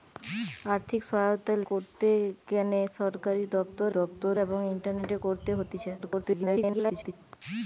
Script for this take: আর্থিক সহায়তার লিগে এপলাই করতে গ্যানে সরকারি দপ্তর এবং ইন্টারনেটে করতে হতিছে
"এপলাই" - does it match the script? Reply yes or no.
no